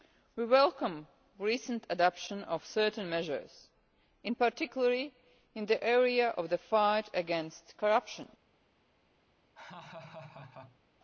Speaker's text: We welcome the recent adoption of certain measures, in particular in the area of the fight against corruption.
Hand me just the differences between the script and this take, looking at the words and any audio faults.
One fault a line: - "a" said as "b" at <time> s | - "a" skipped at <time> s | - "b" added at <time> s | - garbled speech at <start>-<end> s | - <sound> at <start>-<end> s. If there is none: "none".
- laugh at 9.6-10.8 s